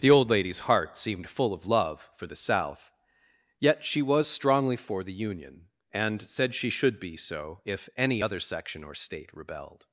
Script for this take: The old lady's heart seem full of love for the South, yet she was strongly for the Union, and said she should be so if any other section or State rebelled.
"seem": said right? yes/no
no